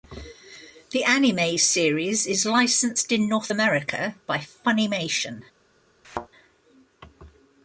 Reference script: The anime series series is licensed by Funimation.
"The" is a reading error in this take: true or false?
false